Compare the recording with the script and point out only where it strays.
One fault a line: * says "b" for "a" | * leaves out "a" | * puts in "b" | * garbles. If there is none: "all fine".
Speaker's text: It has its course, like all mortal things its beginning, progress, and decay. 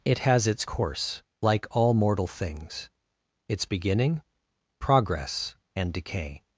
all fine